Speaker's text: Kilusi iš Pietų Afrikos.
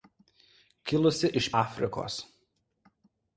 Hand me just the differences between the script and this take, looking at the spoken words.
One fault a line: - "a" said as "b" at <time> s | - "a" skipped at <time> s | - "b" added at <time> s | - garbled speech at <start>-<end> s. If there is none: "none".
- "Pietų" skipped at 1.5 s